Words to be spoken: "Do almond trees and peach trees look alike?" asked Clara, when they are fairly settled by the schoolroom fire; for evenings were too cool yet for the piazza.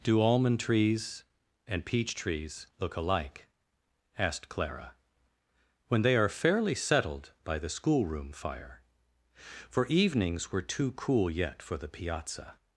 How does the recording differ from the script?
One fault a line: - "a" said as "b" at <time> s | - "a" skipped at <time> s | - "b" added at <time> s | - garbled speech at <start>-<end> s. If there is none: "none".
none